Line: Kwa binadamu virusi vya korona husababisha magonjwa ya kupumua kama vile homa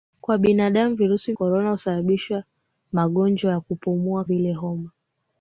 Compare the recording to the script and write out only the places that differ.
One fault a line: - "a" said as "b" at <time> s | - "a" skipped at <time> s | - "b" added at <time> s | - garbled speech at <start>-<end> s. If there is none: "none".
- "vya" skipped at 1.3 s
- "kama" skipped at 4.2 s